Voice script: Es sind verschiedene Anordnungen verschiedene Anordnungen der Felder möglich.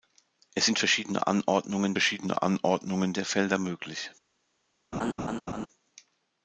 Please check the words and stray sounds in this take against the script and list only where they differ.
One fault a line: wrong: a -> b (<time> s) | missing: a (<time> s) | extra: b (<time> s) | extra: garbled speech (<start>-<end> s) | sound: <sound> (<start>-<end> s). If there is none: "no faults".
sound: laugh (4.9-5.7 s)